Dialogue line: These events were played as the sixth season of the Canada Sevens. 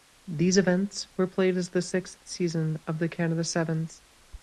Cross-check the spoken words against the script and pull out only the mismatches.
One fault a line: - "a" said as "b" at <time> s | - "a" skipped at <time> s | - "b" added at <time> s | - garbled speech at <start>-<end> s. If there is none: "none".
none